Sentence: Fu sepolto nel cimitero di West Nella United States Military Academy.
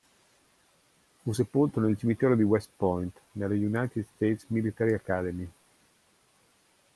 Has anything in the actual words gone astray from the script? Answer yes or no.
yes